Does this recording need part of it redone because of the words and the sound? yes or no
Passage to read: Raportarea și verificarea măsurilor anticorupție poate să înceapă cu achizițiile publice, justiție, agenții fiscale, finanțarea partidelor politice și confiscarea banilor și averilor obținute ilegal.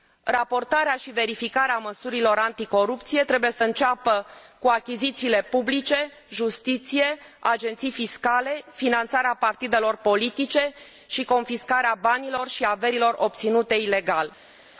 yes